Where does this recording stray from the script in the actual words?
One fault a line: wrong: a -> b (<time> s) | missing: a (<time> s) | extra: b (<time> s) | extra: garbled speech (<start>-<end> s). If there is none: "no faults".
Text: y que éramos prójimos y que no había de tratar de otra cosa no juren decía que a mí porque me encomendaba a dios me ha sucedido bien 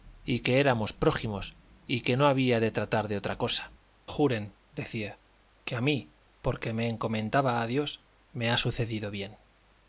missing: no (3.7 s)